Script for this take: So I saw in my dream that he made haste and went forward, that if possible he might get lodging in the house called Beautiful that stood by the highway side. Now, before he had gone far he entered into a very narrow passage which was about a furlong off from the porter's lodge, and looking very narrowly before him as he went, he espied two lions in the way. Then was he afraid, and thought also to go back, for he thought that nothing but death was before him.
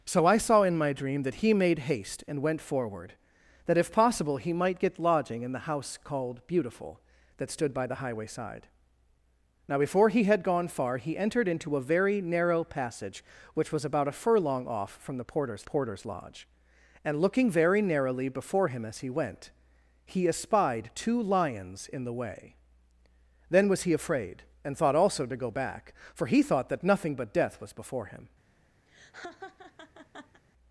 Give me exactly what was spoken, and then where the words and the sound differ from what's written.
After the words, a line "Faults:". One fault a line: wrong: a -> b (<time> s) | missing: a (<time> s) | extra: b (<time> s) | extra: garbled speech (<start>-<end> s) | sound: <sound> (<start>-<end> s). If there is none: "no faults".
So I saw in my dream that he made haste and went forward, that if possible he might get lodging in the house called Beautiful that stood by the highway side. Now, before he had gone far he entered into a very narrow passage which was about a furlong off from the porter's porter's lodge, and looking very narrowly before him as he went, he espied two lions in the way. Then was he afraid, and thought also to go back, for he thought that nothing but death was before him.
Faults:
extra: porter's (15.6 s)
sound: laugh (28.9-30.4 s)